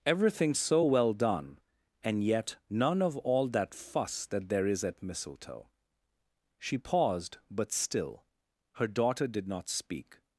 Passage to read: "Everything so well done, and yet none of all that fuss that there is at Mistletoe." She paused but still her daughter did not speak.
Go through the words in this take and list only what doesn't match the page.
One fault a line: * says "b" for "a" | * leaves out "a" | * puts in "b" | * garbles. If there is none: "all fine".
all fine